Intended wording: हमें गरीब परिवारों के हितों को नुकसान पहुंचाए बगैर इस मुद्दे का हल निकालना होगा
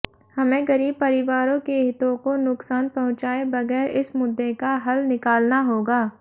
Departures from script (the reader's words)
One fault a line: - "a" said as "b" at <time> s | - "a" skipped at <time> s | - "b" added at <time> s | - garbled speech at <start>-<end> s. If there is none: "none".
none